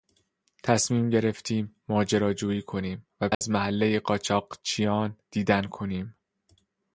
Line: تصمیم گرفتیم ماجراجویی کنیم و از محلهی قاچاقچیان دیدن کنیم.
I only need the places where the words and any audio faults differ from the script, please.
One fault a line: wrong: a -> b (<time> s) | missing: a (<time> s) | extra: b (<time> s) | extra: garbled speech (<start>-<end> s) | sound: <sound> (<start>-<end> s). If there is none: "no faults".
sound: dropout (3.3-3.4 s)